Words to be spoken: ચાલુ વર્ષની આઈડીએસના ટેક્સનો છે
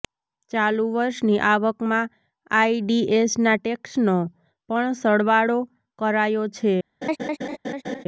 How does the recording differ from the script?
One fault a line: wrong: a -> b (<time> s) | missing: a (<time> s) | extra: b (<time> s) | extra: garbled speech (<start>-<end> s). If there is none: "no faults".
extra: આવકમાં (1.5 s)
extra: પણ સરવાળો કરાયો (4.7 s)